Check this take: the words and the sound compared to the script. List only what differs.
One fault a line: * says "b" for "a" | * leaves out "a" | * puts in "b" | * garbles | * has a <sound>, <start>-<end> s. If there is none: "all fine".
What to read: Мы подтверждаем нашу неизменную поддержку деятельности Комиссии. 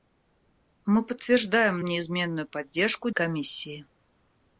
* leaves out "нашу"
* leaves out "деятельности"